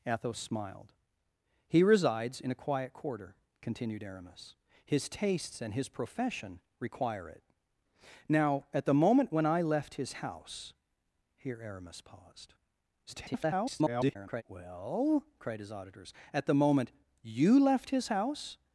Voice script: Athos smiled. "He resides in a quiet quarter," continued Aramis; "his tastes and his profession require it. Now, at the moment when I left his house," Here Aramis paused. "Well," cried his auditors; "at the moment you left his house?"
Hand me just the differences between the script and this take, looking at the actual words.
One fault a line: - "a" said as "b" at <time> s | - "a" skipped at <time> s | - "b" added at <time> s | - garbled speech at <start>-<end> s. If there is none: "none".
- garbled speech at 13.1-14.4 s